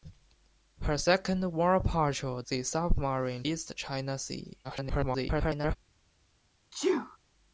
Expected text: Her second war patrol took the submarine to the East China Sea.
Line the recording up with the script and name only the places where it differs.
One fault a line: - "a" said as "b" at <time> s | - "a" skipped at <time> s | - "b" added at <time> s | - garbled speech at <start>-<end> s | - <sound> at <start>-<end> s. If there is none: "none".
- "took" skipped at 2.4 s
- "to the" skipped at 3.4 s
- garbled speech at 4.6-5.8 s
- sneeze at 6.7-7.2 s